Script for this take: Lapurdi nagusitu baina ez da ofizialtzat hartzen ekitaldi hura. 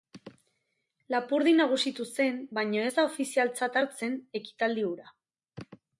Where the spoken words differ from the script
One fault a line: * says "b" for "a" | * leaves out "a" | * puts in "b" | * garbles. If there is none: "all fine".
* puts in "zen"